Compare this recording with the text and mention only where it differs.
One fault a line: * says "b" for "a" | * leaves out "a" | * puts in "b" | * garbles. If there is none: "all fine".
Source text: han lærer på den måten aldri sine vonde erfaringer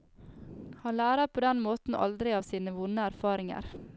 * puts in "av"